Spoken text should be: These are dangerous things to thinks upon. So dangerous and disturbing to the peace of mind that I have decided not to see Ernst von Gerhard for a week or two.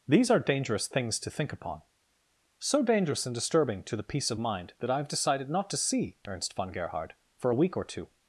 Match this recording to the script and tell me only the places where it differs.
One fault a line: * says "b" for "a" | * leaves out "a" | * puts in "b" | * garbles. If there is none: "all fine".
* says "think" for "thinks"